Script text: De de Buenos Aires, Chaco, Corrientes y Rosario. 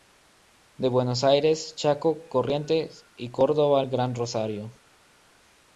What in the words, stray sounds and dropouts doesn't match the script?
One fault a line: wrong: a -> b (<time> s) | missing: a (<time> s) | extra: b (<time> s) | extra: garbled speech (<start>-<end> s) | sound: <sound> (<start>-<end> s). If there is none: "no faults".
missing: de (0.9 s)
extra: Córdoba al Gran (3.3 s)